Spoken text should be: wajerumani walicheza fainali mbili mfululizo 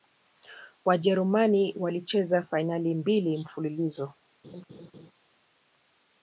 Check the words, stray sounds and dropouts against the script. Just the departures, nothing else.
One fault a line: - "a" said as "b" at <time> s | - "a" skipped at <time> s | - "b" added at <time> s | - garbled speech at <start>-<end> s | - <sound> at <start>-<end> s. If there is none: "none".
- laugh at 4.4-5.1 s